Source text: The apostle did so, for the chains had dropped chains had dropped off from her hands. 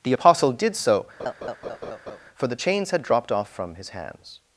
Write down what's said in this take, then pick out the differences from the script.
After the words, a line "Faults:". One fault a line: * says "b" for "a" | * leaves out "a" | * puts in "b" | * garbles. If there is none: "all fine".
The apostle did so, for the chains had dropped off from his hands.
Faults:
* leaves out "chains had dropped"
* says "his" for "her"